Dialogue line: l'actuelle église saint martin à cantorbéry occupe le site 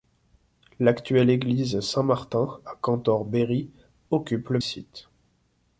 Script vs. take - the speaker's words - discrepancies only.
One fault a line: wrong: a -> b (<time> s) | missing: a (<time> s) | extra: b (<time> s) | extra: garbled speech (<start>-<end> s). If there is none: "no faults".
no faults